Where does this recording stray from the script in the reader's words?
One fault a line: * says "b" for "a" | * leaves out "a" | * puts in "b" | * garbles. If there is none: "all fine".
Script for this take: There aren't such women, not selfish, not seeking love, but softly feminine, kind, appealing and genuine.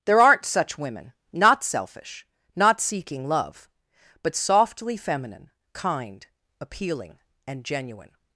all fine